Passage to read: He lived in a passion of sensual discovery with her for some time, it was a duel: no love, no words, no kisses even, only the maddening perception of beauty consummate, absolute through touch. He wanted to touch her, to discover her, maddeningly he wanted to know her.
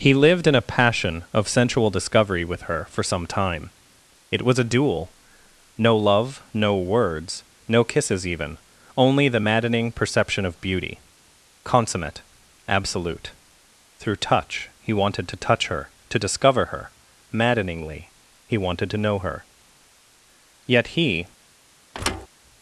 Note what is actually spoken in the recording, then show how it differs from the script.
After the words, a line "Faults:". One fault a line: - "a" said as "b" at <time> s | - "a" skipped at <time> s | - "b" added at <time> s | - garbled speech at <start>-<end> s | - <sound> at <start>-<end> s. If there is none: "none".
He lived in a passion of sensual discovery with her for some time, it was a duel: no love, no words, no kisses even, only the maddening perception of beauty consummate, absolute through touch. He wanted to touch her, to discover her, maddeningly he wanted to know her. Yet he
Faults:
- "Yet he" added at 20.6 s
- thud at 21.9-22.3 s